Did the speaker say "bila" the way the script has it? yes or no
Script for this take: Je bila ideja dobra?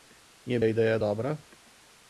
no